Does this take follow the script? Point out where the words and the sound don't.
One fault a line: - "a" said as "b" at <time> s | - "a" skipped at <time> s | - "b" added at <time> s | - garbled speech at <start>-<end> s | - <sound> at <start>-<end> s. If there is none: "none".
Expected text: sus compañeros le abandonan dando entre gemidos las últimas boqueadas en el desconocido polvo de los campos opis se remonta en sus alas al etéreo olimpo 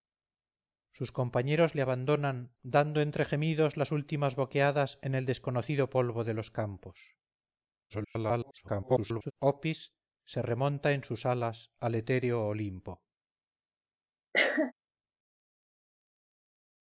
- garbled speech at 7.9-9.3 s
- cough at 14.3-14.7 s